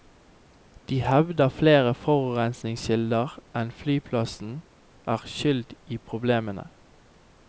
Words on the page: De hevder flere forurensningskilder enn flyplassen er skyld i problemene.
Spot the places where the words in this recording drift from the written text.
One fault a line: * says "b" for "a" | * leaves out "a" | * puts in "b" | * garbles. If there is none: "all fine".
all fine